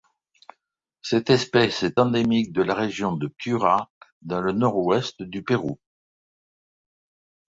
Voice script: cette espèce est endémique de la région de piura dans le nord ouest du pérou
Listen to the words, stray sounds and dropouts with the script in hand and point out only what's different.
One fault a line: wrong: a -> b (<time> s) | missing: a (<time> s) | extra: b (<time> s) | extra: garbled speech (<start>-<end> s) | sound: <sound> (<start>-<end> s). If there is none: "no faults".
no faults